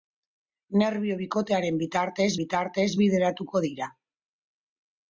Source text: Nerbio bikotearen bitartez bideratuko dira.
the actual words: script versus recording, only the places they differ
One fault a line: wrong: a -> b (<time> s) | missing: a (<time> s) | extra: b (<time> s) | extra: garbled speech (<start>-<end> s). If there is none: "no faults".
extra: bitartez (2.4 s)